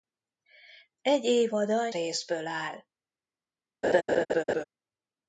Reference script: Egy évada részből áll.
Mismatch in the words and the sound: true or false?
true